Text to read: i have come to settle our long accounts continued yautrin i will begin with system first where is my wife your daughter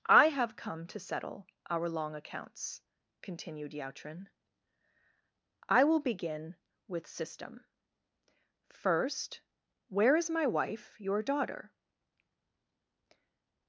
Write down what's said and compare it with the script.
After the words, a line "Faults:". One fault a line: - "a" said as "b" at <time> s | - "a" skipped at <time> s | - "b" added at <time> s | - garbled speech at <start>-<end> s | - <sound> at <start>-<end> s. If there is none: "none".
i have come to settle our long accounts continued yautrin i will begin with system first where is my wife your daughter
Faults:
none